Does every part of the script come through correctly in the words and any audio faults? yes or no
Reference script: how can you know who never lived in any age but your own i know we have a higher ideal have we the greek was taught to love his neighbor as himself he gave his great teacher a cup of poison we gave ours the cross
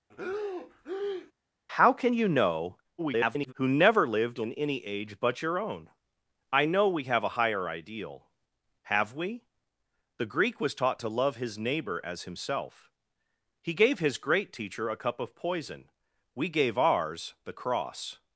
no